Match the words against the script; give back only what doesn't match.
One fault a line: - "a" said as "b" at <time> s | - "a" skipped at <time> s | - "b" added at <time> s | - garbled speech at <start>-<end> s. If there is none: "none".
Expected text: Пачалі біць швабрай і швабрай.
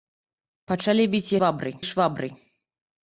none